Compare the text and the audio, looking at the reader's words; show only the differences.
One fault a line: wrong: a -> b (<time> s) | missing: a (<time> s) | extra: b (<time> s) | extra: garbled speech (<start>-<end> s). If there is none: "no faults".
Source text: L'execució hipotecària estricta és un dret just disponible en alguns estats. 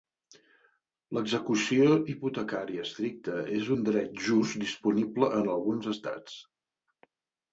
no faults